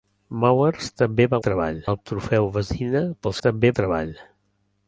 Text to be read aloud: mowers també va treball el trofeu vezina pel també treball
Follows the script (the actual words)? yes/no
yes